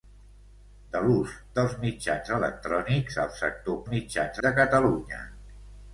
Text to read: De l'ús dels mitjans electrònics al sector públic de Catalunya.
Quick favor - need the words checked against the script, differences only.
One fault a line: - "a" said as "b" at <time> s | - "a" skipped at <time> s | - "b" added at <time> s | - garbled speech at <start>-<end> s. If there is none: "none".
- "públic" said as "mitjans" at 3.9 s